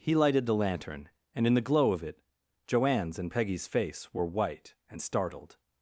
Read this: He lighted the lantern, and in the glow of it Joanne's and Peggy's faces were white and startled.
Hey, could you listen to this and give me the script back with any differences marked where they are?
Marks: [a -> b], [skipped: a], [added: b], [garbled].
He lighted the lantern, and in the glow of it Joanne's and Peggy's [faces -> face] were white and startled.